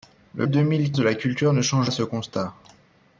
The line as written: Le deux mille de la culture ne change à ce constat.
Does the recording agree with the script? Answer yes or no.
yes